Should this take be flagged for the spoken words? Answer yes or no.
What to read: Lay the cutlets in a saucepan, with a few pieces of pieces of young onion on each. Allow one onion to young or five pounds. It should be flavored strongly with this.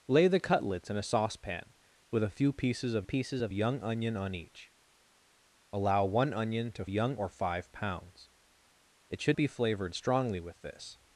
no